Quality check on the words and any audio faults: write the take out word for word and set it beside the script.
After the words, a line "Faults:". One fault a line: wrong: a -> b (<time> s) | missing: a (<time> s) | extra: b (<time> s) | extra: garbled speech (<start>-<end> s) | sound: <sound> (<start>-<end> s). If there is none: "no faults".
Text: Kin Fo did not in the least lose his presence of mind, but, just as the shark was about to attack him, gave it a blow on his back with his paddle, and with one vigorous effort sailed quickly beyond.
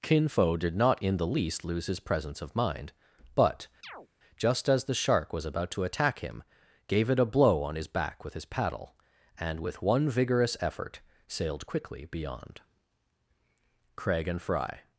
Kin Fo did not in the least lose his presence of mind, but, just as the shark was about to attack him, gave it a blow on his back with his paddle, and with one vigorous effort sailed quickly beyond. Craig and Fry
Faults:
sound: chirp (3.8-4.1 s)
extra: Craig and Fry (14.0 s)